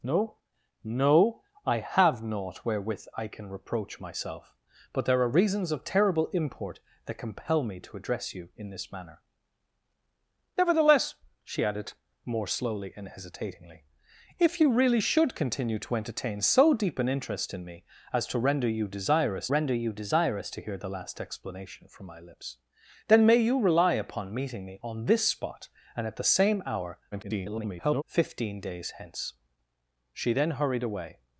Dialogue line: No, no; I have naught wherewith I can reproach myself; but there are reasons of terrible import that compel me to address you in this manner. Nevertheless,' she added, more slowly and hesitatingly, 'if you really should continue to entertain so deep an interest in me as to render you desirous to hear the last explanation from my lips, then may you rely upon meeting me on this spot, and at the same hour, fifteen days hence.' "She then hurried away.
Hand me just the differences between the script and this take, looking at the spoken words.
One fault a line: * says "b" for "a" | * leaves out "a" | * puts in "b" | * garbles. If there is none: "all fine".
* puts in "render you desirous"
* garbles